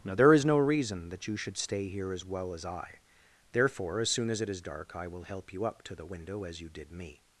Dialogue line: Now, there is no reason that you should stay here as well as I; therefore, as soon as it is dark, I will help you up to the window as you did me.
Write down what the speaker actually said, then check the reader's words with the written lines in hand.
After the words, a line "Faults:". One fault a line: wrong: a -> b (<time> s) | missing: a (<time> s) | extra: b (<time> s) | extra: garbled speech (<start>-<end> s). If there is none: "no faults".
Now, there is no reason that you should stay here as well as I; therefore, as soon as it is dark, I will help you up to the window as you did me.
Faults:
no faults